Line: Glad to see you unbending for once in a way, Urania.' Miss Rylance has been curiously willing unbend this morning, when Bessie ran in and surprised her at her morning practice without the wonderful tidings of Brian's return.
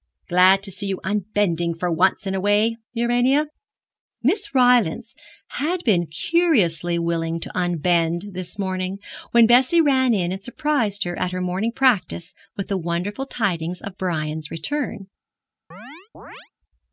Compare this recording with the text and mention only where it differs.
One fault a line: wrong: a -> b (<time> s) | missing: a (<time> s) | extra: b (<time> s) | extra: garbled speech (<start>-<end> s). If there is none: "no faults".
wrong: has -> had (5.6 s)
extra: to (7.4 s)
wrong: without -> with (12.6 s)